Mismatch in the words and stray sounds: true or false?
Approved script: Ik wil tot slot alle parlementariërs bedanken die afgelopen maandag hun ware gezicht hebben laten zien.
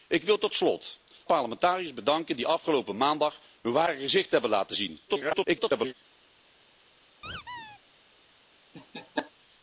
true